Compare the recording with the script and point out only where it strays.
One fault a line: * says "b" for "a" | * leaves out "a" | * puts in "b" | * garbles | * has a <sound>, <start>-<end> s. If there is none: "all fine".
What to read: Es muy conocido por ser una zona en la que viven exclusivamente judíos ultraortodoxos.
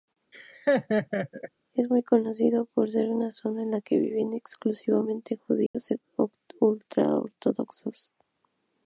* has a laugh, 0.3-1.5 s
* has a dropout, 5.7-5.7 s